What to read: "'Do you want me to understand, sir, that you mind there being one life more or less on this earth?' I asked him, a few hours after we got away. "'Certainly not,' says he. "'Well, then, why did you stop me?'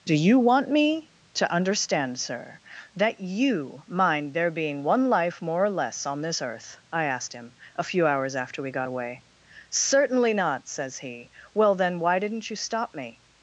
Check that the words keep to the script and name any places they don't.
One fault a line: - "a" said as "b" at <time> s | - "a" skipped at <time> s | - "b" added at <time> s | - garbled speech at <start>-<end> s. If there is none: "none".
- "did" said as "didn't" at 12.2 s